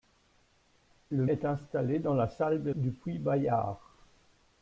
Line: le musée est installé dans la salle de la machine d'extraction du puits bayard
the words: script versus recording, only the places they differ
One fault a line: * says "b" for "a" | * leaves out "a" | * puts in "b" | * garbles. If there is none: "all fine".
* leaves out "musée"
* leaves out "la machine d'extraction"